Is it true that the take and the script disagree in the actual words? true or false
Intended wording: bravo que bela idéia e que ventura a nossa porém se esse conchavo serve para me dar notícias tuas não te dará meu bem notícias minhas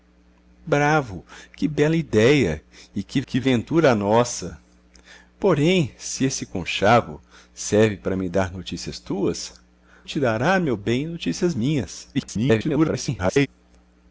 true